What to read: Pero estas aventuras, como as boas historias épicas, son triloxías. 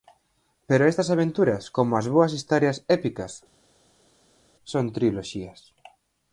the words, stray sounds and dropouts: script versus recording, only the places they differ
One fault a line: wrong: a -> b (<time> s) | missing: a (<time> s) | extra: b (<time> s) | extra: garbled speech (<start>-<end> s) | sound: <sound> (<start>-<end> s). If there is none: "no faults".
no faults